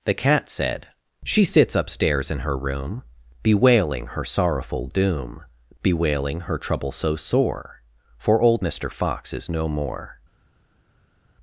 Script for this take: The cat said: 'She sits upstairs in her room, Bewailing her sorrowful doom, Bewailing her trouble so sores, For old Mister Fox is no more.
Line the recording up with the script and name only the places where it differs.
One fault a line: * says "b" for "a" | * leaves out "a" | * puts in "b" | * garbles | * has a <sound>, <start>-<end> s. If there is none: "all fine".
* says "sore" for "sores"